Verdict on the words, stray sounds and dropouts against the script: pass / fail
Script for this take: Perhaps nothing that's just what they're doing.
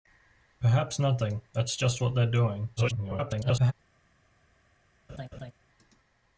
fail